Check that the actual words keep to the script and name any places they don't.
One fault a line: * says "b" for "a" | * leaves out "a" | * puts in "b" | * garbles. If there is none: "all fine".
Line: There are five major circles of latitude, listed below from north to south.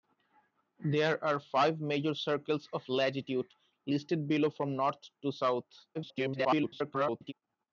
* garbles